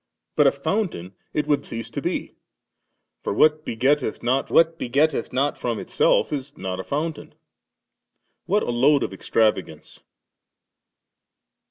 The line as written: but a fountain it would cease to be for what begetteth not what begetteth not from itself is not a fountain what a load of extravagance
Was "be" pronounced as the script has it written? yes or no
yes